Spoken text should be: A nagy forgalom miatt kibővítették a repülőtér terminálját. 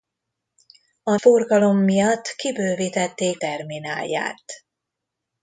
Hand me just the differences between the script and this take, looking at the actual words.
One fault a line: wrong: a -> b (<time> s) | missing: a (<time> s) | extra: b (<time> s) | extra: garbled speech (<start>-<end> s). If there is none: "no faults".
missing: nagy (1.1 s)
missing: a repülőtér (3.4 s)